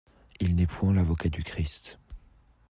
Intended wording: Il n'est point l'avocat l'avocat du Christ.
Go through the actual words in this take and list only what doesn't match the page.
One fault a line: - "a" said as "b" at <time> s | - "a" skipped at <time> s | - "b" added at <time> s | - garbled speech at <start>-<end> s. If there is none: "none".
- "l'avocat" skipped at 1.3 s